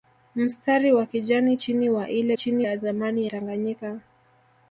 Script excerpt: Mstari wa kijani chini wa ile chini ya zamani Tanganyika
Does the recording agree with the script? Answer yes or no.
yes